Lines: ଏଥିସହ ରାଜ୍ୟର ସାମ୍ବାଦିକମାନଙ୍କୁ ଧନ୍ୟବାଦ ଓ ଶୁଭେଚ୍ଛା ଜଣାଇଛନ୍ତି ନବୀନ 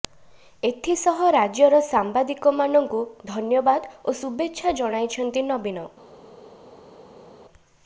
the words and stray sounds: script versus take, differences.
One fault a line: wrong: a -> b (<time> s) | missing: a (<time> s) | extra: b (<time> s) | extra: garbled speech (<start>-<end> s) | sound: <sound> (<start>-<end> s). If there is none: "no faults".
no faults